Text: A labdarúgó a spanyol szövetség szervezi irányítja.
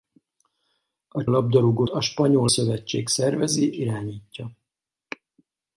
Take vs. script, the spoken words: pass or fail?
pass